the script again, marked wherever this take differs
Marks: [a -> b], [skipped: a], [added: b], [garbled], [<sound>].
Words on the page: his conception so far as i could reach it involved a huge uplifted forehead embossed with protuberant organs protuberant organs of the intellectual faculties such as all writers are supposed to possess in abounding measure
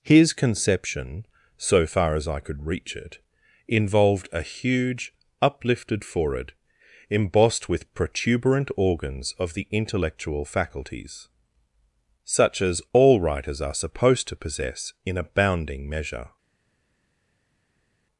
his conception so far as i could reach it involved a huge uplifted forehead embossed with protuberant organs [skipped: protuberant organs] of the intellectual faculties such as all writers are supposed to possess in abounding measure